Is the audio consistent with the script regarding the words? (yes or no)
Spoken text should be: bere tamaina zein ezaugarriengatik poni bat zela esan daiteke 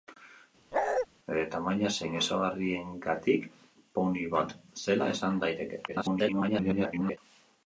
no